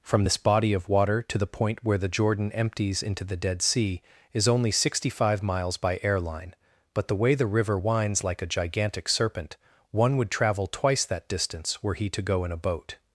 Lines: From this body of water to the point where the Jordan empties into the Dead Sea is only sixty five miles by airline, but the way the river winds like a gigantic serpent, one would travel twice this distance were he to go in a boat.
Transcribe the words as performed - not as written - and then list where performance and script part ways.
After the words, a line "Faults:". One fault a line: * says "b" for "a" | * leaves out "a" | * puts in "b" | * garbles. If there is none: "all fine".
From this body of water to the point where the Jordan empties into the Dead Sea is only sixty five miles by airline, but the way the river winds like a gigantic serpent, one would travel twice that distance were he to go in a boat.
Faults:
* says "that" for "this"